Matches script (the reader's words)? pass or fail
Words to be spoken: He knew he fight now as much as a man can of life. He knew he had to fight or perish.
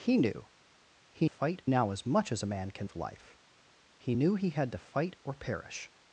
pass